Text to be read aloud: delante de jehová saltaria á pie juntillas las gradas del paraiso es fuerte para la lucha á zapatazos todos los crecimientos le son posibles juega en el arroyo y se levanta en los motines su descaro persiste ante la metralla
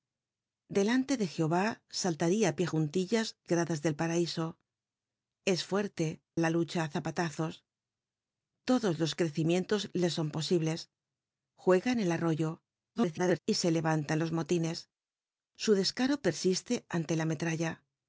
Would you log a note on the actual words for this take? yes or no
yes